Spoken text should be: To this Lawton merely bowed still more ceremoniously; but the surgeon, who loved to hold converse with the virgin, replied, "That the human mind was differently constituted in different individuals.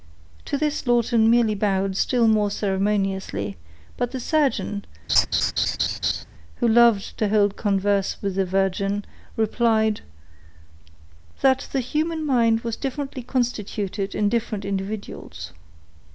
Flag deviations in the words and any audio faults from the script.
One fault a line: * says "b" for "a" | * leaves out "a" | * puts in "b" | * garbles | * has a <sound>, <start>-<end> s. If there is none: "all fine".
* has a laugh, 5.1-6.2 s